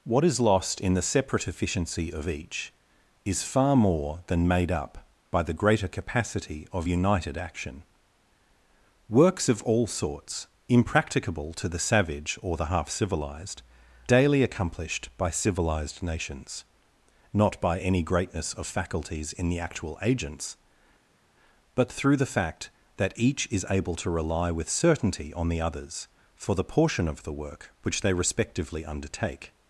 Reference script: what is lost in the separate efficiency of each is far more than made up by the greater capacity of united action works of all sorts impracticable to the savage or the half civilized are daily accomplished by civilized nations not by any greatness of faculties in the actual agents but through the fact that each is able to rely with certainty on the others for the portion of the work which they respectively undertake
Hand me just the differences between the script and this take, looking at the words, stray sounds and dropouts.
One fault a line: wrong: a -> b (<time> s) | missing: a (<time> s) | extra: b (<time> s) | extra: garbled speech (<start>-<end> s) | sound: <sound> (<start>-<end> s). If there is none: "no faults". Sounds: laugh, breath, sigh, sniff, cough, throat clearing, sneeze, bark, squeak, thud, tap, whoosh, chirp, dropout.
missing: are (13.6 s)